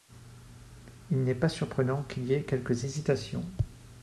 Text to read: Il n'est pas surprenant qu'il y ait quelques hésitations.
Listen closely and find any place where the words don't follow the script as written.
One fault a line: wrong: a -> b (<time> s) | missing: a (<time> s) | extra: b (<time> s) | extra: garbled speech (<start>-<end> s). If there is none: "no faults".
no faults